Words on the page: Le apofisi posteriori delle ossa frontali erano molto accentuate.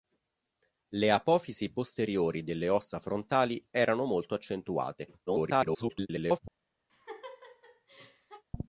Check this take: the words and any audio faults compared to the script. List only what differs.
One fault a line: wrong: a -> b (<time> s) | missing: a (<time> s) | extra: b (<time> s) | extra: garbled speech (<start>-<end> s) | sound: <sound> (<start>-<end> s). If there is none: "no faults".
extra: garbled speech (5.3-6.4 s)
sound: laugh (6.9-8.4 s)